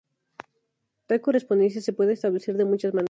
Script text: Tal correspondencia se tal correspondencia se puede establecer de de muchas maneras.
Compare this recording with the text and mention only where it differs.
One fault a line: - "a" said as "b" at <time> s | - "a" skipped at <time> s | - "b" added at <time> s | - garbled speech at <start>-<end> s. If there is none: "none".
- "tal correspondencia se" skipped at 1.9 s
- "de" skipped at 2.6 s